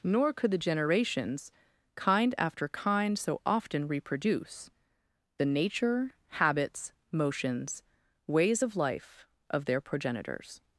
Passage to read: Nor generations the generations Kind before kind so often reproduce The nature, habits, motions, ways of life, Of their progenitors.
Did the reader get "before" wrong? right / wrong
wrong